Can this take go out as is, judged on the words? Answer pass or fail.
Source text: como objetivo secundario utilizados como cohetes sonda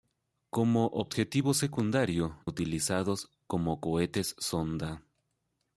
pass